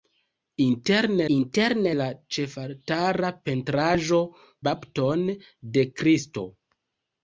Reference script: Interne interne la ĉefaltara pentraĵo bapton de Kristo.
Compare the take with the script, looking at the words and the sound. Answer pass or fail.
pass